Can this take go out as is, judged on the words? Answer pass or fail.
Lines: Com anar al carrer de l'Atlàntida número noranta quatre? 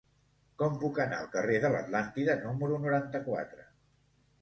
fail